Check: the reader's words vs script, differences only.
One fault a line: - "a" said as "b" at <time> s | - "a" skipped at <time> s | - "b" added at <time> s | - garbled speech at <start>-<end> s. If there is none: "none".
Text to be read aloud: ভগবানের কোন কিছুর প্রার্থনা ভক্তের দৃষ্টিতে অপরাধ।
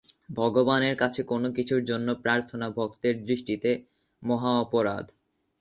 - "কাছে" added at 1.0 s
- "জন্য" added at 1.9 s
- "মহা" added at 4.2 s